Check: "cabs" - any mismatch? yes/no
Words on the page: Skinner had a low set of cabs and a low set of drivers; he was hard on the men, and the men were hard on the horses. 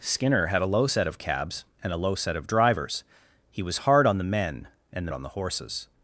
no